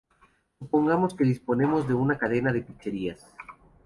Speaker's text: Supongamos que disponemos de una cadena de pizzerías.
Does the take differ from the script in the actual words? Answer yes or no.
no